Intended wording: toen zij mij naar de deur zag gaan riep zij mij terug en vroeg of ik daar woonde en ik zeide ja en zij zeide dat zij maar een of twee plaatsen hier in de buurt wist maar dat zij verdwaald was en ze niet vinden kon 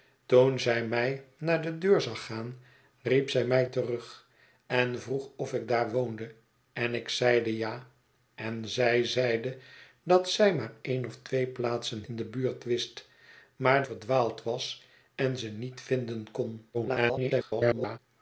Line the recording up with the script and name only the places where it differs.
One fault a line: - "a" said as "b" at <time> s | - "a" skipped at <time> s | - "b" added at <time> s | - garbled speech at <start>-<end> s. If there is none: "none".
- "hier" skipped at 12.0 s
- "dat zij" skipped at 13.8 s
- garbled speech at 16.7-18.0 s